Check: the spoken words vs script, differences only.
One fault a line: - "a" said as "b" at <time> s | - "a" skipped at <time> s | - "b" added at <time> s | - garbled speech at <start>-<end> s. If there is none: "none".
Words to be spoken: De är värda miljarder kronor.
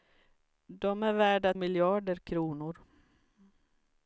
none